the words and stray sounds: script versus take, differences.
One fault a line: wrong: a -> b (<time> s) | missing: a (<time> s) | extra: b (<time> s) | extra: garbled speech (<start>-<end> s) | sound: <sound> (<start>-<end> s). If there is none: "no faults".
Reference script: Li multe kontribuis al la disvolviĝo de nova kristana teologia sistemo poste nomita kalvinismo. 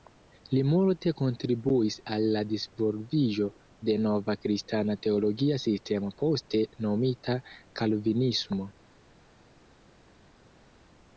no faults